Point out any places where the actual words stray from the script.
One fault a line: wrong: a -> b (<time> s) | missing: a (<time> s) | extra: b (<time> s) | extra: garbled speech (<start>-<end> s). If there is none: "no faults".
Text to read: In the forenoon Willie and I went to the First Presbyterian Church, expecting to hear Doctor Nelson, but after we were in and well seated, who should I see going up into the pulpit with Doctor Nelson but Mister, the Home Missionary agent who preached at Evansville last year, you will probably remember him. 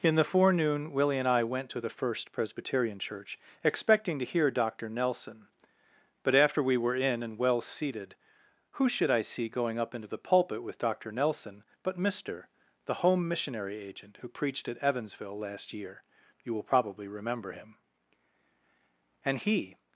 extra: And he (19.2 s)